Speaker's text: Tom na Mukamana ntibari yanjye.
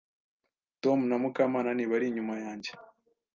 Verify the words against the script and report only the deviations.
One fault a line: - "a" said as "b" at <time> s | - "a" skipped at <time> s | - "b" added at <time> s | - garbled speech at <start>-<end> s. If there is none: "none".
- "inyuma" added at 2.1 s